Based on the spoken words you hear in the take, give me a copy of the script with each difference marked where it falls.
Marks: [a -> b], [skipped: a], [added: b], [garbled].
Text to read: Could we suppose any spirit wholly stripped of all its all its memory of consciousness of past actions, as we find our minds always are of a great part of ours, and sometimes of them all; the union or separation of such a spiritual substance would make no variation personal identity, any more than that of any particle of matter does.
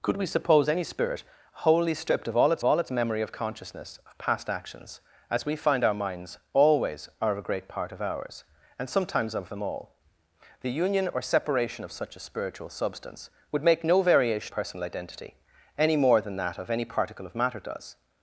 Could we suppose any spirit wholly stripped of all its all its memory of consciousness of past actions, as we find our minds always are of a great part of ours, and sometimes of them all; the union or separation of such a spiritual substance would make no variation personal identity, any more than that of any particle of matter does.